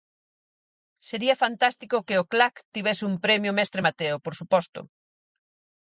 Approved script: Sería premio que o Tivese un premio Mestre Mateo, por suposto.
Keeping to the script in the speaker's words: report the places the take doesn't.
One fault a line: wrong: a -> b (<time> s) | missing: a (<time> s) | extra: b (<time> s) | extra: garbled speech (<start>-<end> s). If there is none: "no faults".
wrong: premio -> fantástico (1.4 s)
extra: Clac (2.3 s)